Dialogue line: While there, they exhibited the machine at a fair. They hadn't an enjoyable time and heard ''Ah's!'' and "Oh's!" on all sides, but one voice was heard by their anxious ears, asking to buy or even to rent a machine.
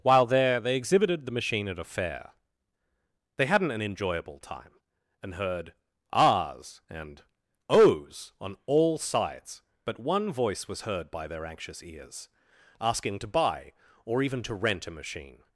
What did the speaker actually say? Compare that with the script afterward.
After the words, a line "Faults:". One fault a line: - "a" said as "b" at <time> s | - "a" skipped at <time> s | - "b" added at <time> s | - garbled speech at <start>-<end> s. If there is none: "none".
While there, they exhibited the machine at a fair. They hadn't an enjoyable time and heard ''Ah's!'' and "Oh's!" on all sides, but one voice was heard by their anxious ears, asking to buy or even to rent a machine.
Faults:
none